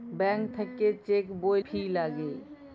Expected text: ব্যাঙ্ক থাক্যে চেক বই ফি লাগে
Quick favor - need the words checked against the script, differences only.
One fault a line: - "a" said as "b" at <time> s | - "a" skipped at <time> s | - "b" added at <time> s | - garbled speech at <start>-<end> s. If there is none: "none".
none